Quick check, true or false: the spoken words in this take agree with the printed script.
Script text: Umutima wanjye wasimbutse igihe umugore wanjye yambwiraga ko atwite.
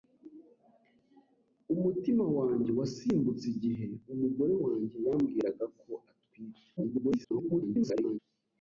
false